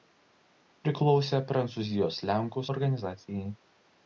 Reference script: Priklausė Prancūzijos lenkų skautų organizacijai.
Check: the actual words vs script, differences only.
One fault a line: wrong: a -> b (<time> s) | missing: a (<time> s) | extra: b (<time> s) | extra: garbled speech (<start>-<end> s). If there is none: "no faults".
missing: skautų (2.6 s)